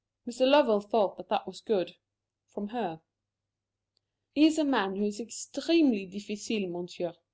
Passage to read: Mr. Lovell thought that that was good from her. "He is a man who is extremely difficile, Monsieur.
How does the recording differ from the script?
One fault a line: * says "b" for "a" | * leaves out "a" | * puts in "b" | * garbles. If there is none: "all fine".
all fine